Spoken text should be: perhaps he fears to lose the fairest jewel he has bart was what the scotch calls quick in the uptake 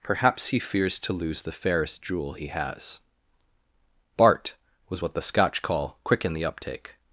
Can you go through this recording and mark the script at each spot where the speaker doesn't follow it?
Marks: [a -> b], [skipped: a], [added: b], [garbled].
perhaps he fears to lose the fairest jewel he has bart was what the scotch [calls -> call] quick in the uptake